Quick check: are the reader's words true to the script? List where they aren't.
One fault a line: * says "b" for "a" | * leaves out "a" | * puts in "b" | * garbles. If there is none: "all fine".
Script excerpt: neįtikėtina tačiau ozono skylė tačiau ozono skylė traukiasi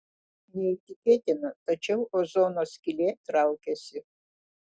* leaves out "tačiau ozono skylė"